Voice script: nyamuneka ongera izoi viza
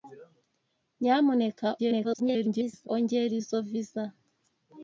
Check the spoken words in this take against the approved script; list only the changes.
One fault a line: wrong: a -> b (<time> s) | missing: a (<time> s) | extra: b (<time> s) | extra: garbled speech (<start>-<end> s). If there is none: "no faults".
extra: garbled speech (1.8-2.9 s)